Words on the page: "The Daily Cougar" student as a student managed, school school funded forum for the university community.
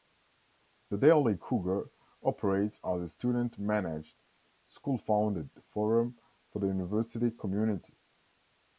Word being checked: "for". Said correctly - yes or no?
yes